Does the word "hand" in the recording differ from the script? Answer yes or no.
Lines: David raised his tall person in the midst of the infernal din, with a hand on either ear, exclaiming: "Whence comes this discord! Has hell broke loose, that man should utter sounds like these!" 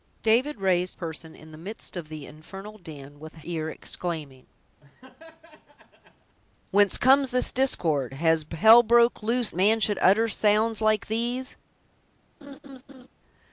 yes